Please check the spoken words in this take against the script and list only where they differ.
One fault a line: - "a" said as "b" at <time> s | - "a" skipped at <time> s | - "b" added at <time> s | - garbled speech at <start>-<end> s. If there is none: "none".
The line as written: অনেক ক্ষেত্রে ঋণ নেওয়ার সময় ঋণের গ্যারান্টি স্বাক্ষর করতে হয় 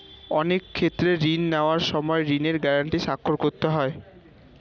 none